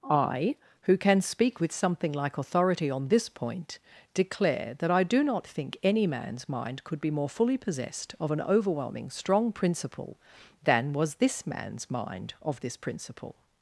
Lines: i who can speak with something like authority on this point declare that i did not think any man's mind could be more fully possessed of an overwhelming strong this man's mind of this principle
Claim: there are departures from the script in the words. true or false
true